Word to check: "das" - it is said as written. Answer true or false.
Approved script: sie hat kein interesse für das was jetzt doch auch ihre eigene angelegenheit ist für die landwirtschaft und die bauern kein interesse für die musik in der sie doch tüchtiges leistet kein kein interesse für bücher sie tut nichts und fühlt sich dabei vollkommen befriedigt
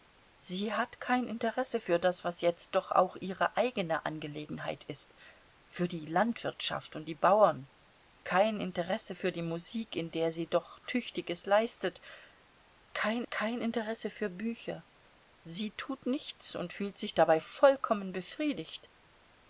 true